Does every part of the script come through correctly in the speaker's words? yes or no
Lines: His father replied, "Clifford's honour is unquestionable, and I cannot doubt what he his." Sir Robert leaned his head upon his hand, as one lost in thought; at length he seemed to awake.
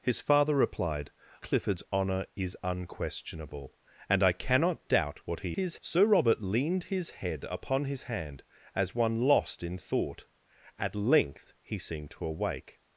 yes